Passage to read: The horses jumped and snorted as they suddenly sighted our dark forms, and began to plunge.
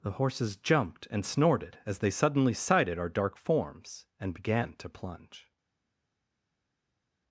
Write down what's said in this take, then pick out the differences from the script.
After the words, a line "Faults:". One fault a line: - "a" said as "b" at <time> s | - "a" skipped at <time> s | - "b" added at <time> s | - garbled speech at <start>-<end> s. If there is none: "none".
The horses jumped and snorted as they suddenly sighted our dark forms, and began to plunge.
Faults:
none